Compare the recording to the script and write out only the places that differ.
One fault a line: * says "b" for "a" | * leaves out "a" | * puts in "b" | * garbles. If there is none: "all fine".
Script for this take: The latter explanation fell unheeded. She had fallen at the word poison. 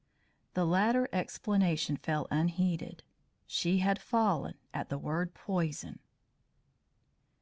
all fine